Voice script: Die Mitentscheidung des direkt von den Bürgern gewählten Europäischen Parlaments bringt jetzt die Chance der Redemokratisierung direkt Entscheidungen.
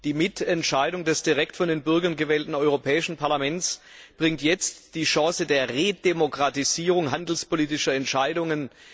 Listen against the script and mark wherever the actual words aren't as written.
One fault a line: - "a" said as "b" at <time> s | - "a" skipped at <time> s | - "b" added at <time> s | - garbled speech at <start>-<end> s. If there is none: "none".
- "direkt" said as "handelspolitischer" at 7.1 s